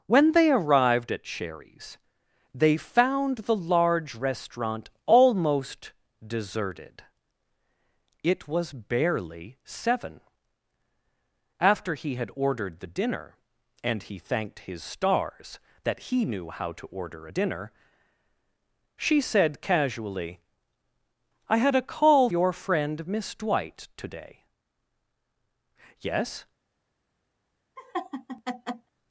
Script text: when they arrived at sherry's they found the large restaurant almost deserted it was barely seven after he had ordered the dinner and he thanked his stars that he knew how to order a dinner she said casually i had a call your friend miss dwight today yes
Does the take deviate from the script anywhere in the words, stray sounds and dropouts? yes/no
yes